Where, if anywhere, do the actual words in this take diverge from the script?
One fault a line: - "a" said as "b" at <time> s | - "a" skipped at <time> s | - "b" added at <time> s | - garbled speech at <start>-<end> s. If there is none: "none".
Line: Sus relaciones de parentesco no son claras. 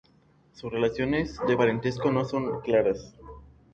none